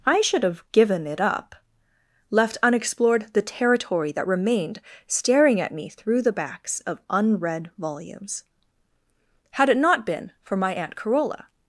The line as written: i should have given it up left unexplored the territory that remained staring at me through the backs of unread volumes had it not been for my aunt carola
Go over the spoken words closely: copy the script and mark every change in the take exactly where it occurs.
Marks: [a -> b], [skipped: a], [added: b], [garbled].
i should have given it up left unexplored the territory that remained staring at me through the backs of unread volumes had it not been for my aunt carola